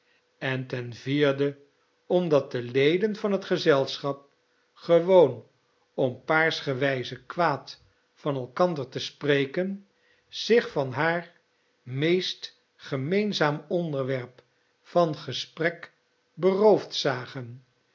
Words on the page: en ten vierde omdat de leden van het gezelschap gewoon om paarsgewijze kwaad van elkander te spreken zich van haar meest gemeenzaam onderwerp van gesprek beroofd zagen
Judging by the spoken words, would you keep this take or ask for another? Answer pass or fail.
pass